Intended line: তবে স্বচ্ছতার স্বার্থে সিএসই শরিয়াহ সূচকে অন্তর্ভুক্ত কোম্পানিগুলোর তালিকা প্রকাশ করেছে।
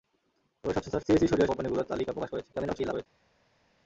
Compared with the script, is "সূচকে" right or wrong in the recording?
wrong